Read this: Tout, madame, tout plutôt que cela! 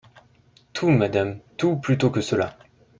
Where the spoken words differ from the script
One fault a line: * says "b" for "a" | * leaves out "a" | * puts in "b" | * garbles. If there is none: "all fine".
all fine